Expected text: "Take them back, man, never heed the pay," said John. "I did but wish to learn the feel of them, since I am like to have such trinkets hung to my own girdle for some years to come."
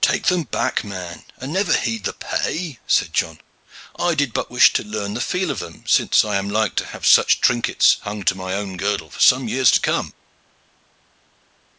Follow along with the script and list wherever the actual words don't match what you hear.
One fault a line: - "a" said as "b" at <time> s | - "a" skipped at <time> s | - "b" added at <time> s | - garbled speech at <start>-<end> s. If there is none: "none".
- "and" added at 1.4 s